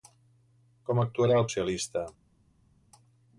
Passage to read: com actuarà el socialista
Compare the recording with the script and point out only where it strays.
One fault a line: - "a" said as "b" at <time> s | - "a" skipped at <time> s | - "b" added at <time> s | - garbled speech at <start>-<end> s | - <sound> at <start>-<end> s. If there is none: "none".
none